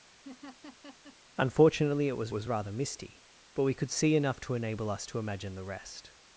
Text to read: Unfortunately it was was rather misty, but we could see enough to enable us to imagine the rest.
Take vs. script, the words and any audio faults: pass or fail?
fail